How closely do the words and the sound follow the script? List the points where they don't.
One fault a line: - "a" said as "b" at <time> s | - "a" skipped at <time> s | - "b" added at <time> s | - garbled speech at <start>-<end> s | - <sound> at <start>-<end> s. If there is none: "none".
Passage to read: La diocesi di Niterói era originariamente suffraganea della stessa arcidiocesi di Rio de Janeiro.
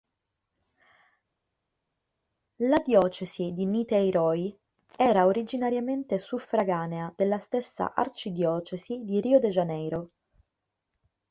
none